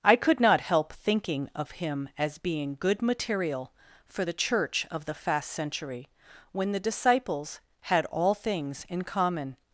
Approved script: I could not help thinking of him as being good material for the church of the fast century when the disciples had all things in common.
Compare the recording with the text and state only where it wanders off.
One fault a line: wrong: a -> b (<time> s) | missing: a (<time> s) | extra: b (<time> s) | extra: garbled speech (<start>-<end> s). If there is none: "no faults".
no faults